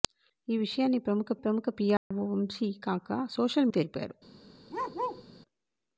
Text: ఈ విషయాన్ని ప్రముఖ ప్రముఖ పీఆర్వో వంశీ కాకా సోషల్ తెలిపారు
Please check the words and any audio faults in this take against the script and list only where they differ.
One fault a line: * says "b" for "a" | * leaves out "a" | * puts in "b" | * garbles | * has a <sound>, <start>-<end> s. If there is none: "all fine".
* has a dropout, 2.0-2.1 s
* has a bark, 4.7-5.2 s